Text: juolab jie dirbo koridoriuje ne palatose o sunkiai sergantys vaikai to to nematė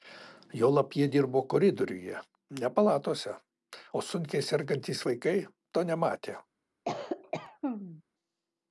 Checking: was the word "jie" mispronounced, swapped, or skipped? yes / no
no